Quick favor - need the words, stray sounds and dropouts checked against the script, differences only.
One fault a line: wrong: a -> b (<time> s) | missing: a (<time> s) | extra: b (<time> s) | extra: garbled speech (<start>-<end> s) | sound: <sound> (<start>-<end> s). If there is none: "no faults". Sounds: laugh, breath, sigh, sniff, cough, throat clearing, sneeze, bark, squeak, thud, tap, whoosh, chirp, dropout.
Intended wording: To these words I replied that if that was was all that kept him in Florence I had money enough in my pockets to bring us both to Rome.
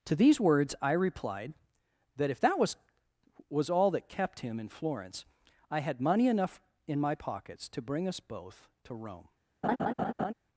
sound: laugh (9.6-10.3 s)